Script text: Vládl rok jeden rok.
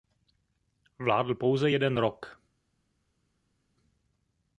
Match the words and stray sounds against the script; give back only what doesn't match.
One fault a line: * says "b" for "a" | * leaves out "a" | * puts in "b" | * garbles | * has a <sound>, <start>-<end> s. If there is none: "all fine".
* says "pouze" for "rok"